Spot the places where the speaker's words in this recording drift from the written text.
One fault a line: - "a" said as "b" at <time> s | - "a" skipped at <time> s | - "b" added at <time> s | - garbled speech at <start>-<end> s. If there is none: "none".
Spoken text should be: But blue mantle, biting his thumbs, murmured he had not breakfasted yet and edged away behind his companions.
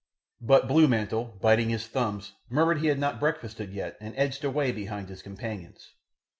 none